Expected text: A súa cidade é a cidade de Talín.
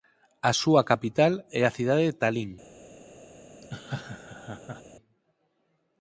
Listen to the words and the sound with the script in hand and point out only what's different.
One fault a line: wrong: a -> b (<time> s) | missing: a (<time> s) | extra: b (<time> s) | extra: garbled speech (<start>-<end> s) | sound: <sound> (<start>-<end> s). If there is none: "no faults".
wrong: cidade -> capital (0.9 s)
sound: laugh (3.6-4.8 s)